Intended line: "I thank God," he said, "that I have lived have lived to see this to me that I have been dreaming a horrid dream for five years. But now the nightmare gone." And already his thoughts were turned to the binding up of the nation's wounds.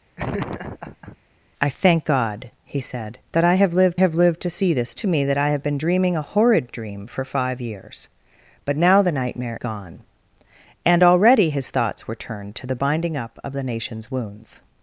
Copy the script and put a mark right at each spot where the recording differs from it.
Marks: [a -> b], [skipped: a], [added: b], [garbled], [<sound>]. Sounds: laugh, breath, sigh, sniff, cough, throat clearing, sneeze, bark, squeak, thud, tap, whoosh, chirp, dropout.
[laugh] "I thank God," he said, "that I have lived have lived to see this to me that I have been dreaming a horrid dream for five years. But now the nightmare gone." And already his thoughts were turned to the binding up of the nation's wounds.